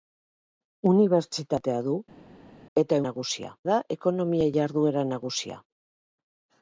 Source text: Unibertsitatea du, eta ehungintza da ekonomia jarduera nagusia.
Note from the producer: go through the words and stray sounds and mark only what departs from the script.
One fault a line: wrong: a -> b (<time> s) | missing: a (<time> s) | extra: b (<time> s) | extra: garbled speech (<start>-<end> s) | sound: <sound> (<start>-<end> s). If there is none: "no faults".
wrong: ehungintza -> nagusia (3.1 s)